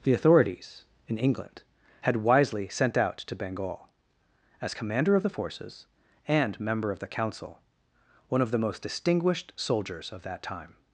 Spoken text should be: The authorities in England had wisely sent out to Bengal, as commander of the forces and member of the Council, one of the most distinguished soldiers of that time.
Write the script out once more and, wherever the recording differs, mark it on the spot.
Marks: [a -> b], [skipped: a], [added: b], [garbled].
The authorities in England had wisely sent out to Bengal, as commander of the forces and member of the Council, one of the most distinguished soldiers of that time.